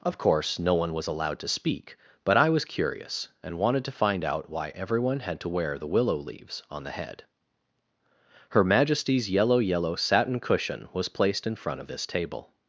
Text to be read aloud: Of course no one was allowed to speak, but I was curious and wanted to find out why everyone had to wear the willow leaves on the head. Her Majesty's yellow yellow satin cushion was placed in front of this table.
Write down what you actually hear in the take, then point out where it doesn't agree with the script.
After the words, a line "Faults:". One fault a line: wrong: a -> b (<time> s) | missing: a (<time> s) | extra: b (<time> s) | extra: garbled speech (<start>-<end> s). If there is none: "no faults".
Of course no one was allowed to speak, but I was curious and wanted to find out why everyone had to wear the willow leaves on the head. Her Majesty's yellow yellow satin cushion was placed in front of this table.
Faults:
no faults